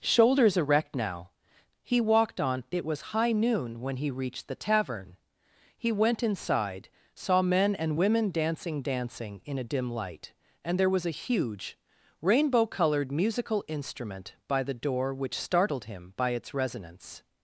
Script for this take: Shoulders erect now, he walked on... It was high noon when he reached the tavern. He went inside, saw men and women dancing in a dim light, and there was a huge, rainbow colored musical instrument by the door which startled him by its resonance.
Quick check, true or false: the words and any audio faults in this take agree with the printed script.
false